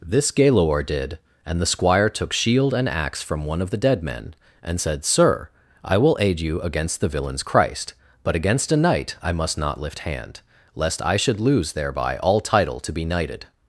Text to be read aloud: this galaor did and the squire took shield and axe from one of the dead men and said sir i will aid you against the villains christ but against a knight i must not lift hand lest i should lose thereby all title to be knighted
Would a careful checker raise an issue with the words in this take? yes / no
no